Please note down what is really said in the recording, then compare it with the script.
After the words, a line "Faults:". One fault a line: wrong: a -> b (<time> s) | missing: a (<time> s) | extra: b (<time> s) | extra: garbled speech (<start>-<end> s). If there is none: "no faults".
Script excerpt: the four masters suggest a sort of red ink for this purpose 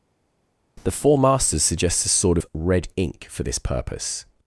the four masters suggests a sort of red ink for this purpose
Faults:
wrong: suggest -> suggests (1.6 s)